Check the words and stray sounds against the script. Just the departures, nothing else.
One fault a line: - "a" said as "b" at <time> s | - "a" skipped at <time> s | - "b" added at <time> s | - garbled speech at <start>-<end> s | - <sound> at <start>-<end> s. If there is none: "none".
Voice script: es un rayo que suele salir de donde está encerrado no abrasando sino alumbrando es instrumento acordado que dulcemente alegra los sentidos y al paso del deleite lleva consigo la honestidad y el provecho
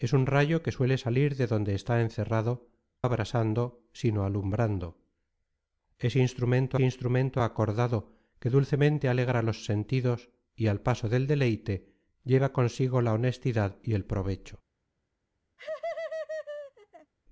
- "no" skipped at 2.7 s
- "instrumento" added at 6.8 s
- laugh at 15.6-17.1 s